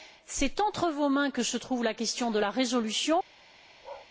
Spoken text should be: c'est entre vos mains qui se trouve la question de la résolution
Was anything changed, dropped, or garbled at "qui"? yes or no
yes